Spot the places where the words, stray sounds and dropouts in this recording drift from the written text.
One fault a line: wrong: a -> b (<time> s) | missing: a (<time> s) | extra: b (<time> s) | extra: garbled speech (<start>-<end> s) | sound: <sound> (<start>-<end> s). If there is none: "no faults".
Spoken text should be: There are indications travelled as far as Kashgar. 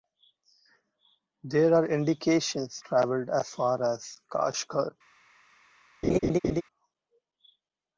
sound: laugh (6.0-6.6 s)